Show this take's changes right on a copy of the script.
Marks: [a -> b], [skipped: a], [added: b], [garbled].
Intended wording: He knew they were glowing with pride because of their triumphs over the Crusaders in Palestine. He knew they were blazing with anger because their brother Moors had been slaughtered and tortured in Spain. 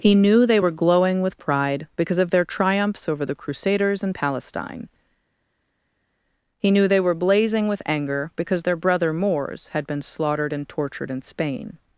He knew they were glowing with pride because of their triumphs over the Crusaders in Palestine. He knew they were blazing with anger because their brother Moors had been slaughtered and tortured in Spain.